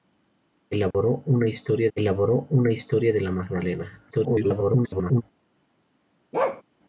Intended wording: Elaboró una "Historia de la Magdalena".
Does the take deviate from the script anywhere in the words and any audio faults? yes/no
yes